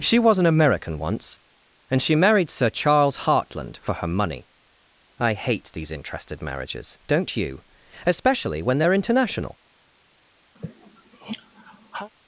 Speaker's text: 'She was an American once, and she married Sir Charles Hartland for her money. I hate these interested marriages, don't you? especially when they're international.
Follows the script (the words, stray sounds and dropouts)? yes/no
no